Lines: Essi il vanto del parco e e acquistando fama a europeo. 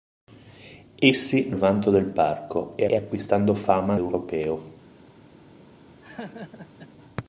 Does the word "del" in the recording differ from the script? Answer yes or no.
no